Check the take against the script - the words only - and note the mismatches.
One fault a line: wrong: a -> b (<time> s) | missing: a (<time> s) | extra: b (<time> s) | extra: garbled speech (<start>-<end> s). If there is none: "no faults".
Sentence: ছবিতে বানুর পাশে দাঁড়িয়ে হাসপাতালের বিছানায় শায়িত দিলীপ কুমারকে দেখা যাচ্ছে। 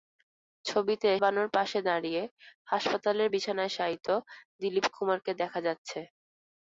no faults